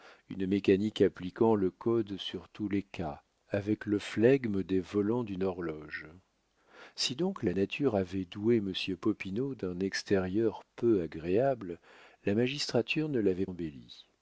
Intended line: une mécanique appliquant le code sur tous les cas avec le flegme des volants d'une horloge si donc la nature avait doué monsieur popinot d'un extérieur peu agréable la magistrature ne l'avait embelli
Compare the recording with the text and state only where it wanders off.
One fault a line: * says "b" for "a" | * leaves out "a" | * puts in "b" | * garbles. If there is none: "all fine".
all fine